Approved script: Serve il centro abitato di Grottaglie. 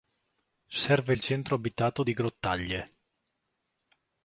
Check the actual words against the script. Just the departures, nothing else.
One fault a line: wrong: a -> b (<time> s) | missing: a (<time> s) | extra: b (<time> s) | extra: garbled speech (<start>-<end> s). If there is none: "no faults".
no faults